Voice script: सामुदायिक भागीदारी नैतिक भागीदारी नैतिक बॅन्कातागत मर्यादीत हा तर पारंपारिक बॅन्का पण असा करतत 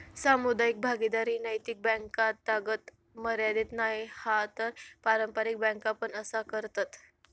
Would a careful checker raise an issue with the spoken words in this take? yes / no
yes